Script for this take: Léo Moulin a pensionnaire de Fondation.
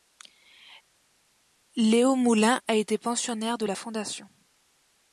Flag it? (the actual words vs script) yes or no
yes